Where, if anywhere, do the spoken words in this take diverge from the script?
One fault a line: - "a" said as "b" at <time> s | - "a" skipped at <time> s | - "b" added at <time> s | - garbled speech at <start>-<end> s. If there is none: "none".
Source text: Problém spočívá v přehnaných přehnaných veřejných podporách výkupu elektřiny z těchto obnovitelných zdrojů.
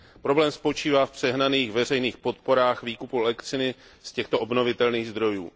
- "přehnaných" skipped at 1.7 s